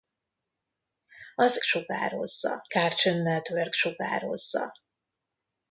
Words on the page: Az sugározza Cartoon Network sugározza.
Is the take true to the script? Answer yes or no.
yes